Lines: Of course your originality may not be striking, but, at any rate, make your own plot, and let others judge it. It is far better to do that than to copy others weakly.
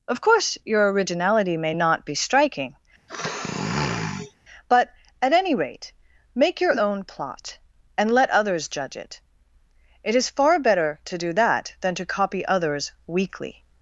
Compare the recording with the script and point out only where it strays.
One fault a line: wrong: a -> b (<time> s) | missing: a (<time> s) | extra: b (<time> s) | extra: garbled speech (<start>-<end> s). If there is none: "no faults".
no faults